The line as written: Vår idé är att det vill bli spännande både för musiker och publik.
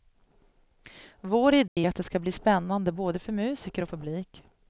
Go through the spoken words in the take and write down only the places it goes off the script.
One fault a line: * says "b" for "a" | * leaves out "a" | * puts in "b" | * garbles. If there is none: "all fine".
* says "ska" for "vill"